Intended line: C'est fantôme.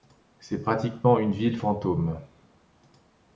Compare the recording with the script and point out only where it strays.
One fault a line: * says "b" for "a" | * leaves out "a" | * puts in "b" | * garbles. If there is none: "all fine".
* puts in "pratiquement une ville"